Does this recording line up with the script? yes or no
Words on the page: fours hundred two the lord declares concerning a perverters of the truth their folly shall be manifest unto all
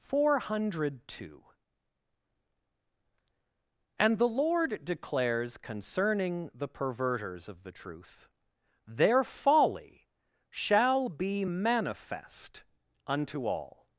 no